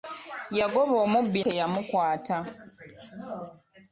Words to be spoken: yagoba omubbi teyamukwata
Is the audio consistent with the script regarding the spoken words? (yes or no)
yes